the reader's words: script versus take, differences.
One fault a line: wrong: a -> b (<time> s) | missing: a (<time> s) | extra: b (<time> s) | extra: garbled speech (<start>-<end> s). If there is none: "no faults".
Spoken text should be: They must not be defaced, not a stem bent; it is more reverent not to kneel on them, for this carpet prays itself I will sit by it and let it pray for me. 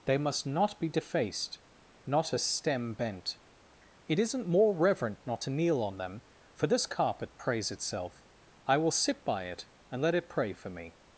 wrong: is -> isn't (4.2 s)